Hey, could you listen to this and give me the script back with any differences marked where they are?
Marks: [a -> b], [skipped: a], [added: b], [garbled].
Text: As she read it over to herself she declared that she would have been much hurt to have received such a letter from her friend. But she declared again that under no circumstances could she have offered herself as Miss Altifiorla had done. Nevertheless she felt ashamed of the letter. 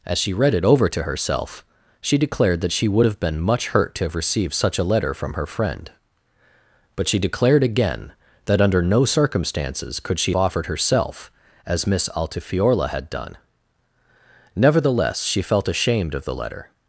As she read it over to herself she declared that she would have been much hurt to have received such a letter from her friend. But she declared again that under no circumstances could she [skipped: have] offered herself as Miss Altifiorla had done. Nevertheless she felt ashamed of the letter.